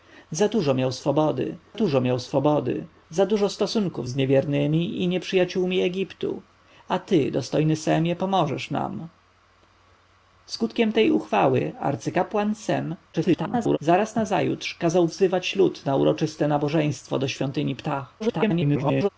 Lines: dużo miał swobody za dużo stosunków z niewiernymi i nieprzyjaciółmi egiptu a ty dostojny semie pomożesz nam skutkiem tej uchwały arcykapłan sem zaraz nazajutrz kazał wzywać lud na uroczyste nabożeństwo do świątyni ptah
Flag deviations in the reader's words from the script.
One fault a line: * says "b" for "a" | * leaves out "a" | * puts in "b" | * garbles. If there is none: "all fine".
* puts in "dużo miał swobody"
* garbles
* garbles